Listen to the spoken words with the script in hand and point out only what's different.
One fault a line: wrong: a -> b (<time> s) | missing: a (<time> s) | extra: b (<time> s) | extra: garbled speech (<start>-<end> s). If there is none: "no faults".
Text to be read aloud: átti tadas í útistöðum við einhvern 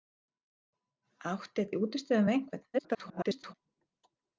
missing: tadas (1.7 s)
extra: garbled speech (2.7-3.5 s)